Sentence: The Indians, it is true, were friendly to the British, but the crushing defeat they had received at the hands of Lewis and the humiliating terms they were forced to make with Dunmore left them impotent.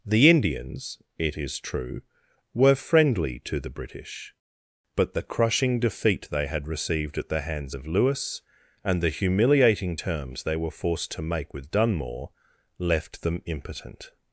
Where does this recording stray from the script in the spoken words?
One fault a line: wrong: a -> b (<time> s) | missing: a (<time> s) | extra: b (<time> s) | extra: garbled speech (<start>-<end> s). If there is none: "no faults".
no faults